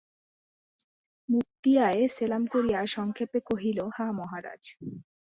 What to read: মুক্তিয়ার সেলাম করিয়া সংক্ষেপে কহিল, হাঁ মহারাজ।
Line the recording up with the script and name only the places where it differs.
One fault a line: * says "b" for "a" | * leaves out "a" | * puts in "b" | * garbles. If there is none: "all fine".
all fine